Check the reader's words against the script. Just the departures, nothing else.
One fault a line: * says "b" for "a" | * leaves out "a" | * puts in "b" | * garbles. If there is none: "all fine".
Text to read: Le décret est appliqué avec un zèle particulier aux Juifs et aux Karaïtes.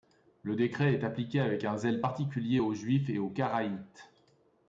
all fine